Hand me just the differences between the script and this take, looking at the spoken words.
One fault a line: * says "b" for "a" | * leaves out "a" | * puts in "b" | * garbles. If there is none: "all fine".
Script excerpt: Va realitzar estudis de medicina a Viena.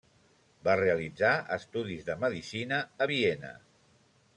all fine